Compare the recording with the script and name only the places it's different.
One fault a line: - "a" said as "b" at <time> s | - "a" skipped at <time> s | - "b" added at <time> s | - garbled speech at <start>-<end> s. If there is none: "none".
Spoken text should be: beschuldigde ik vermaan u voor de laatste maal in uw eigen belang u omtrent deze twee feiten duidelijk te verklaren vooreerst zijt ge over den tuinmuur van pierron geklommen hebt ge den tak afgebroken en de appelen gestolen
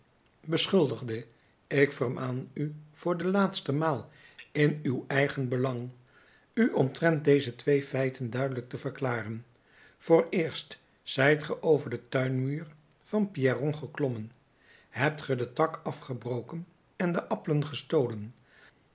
none